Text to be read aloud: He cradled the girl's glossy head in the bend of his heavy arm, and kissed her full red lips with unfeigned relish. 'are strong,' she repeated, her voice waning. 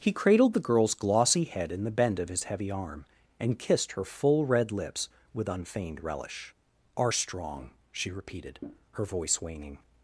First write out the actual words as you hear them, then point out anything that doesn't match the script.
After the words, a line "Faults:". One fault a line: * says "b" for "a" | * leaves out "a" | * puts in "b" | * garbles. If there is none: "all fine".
He cradled the girl's glossy head in the bend of his heavy arm, and kissed her full red lips with unfeigned relish. 'are strong,' she repeated, her voice waning.
Faults:
all fine